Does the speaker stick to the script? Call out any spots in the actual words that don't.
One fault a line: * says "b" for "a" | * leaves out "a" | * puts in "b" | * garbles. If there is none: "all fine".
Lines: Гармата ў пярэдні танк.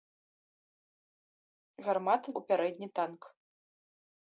all fine